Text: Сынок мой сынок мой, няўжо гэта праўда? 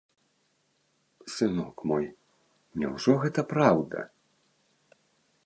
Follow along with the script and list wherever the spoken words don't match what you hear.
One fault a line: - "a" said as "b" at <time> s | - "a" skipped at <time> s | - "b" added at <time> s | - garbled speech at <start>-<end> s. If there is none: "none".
- "сынок мой" skipped at 2.0 s